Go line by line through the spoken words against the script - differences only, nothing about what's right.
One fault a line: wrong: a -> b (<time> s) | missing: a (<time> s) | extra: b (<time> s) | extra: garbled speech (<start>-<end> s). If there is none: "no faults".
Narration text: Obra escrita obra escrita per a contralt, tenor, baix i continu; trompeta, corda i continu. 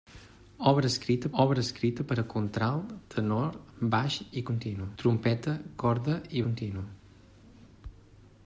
no faults